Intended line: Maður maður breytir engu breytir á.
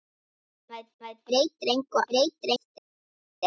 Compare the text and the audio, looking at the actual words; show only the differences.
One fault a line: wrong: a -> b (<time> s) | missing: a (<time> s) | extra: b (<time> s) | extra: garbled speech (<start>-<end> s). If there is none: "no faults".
no faults